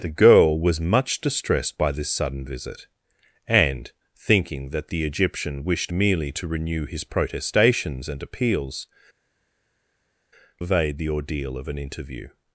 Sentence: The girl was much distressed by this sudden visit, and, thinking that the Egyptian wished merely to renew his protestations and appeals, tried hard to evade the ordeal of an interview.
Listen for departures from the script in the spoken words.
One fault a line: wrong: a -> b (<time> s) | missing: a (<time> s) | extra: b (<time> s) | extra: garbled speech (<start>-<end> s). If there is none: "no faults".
missing: tried hard to (8.9 s)